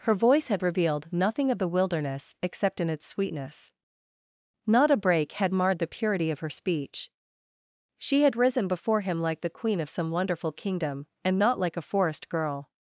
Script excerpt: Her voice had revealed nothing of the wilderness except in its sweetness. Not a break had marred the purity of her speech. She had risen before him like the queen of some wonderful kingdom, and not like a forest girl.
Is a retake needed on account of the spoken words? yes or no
no